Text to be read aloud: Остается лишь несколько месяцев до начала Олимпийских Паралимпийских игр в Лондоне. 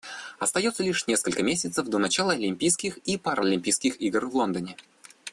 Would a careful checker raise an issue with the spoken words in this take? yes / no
yes